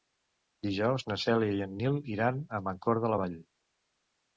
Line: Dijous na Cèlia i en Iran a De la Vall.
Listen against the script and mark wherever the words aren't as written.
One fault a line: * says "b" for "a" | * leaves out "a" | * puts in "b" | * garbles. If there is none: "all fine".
* puts in "Nil"
* puts in "Mancor"